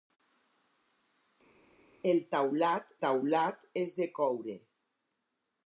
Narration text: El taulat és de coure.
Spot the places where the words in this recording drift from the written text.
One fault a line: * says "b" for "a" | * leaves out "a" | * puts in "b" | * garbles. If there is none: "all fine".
* puts in "taulat"